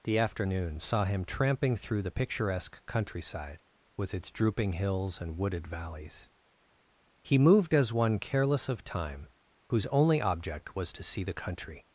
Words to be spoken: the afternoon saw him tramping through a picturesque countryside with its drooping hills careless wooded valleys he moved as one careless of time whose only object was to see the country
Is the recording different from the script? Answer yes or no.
yes